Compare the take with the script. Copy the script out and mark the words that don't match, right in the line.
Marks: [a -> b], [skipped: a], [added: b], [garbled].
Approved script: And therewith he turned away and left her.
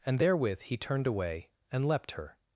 And therewith he turned away and [left -> leapt] her.